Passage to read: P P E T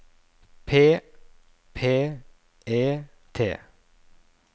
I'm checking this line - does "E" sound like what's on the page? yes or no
yes